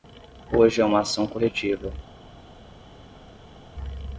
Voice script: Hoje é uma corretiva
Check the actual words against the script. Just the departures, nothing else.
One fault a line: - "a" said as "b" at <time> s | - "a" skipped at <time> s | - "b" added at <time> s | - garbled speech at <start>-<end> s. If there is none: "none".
- "ação" added at 1.0 s